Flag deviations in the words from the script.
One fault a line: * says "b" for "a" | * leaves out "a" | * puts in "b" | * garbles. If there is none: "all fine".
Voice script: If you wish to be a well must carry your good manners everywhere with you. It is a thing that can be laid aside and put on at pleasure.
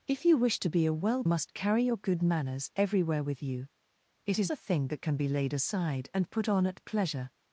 all fine